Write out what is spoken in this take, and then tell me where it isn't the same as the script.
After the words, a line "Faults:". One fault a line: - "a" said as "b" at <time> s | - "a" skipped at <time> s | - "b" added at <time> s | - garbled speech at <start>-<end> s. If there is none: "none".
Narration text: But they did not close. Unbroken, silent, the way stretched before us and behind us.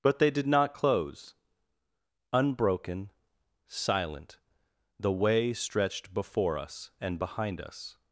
But they did not close. Unbroken, silent, the way stretched before us and behind us.
Faults:
none